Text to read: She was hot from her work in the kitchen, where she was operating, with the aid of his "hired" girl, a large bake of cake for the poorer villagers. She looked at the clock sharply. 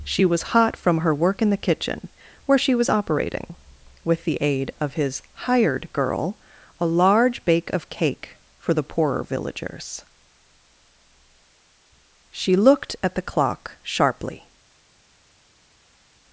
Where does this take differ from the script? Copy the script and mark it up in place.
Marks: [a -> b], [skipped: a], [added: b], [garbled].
She was hot from her work in the kitchen, where she was operating, with the aid of his "hired" girl, a large bake of cake for the poorer villagers. She looked at the clock sharply.